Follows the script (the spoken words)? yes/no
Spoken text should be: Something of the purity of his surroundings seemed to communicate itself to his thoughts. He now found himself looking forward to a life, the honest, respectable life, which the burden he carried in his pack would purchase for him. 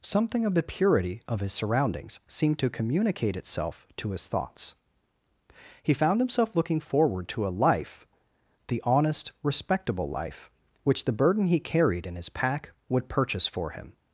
no